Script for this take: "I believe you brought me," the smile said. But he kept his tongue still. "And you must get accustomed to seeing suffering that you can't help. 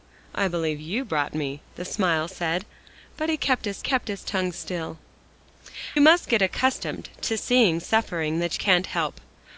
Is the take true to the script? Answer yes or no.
no